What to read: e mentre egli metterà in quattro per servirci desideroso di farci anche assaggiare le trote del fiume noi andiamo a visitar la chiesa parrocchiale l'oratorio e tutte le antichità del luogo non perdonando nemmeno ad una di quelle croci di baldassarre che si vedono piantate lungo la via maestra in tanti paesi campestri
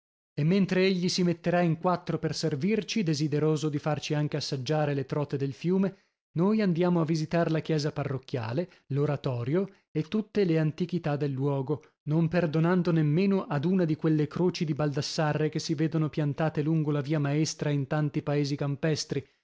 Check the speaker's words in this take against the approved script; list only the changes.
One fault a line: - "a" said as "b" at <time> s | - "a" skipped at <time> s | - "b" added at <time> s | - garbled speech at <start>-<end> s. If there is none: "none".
- "si" added at 1.1 s